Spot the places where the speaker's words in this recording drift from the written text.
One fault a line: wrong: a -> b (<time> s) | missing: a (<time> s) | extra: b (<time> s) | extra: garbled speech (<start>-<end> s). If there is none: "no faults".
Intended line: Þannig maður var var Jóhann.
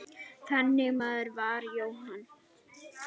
missing: var (1.7 s)